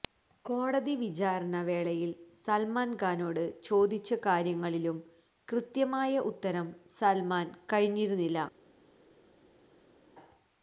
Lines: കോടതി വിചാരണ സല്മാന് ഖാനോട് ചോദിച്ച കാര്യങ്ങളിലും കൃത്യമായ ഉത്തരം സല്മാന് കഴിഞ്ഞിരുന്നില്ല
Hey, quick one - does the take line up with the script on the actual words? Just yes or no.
no